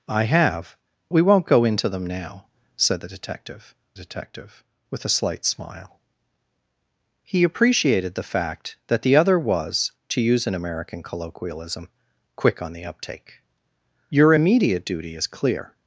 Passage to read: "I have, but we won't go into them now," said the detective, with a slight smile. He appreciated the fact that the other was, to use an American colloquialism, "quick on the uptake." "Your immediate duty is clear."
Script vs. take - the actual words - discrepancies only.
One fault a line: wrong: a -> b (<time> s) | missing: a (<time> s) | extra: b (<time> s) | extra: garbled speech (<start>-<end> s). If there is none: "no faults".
missing: but (0.8 s)
extra: detective (3.9 s)